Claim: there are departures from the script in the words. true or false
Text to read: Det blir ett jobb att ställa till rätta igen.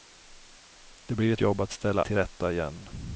false